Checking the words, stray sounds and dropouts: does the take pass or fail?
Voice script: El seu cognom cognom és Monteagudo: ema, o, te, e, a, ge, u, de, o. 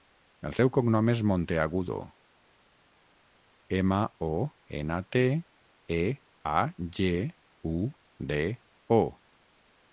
fail